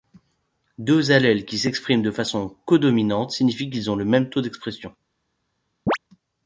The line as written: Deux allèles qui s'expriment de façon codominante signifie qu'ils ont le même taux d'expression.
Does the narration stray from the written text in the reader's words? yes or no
no